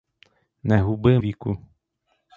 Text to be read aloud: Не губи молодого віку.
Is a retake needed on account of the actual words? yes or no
yes